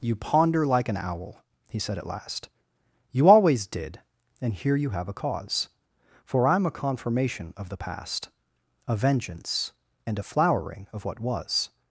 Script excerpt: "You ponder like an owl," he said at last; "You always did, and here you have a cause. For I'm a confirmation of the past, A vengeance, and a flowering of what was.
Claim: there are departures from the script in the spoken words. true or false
false